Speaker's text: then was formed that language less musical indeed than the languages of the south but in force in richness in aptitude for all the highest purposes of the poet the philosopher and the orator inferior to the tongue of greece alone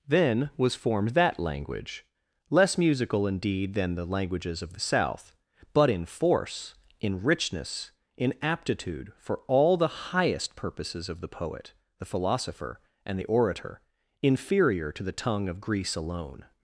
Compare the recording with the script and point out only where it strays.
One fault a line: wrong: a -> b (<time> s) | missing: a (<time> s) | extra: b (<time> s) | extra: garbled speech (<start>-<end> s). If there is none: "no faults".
no faults